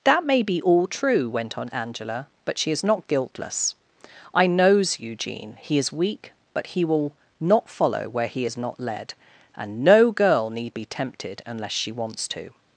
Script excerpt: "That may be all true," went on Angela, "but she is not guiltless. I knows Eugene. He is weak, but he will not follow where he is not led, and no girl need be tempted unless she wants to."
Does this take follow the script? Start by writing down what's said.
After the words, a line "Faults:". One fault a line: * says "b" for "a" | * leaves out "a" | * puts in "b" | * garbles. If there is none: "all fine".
"That may be all true," went on Angela, "but she is not guiltless. I knows Eugene. He is weak, but he will not follow where he is not led, and no girl need be tempted unless she wants to."
Faults:
all fine